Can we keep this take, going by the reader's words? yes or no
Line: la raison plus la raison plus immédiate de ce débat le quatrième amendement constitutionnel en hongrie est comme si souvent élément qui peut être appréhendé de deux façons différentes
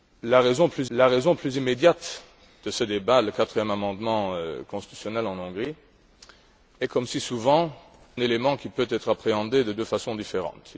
yes